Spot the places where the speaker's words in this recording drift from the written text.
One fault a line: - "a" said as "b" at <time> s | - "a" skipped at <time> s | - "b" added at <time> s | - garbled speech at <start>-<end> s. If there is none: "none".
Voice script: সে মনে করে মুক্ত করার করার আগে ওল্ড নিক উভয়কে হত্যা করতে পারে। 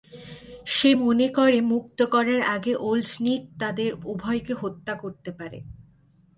- "করার" skipped at 2.4 s
- "তাদের" added at 3.6 s